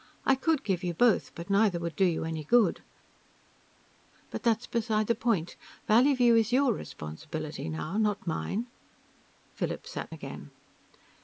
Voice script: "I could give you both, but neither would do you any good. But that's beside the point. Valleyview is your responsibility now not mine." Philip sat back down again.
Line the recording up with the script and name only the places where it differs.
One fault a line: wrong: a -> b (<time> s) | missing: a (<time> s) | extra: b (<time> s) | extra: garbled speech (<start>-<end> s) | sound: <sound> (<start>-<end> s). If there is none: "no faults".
missing: back down (10.1 s)